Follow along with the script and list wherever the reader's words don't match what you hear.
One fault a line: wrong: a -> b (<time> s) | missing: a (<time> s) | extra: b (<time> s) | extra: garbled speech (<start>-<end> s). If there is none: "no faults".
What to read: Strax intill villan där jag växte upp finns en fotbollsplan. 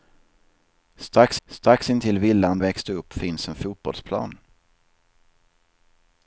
extra: strax (1.5 s)
missing: där jag (2.6 s)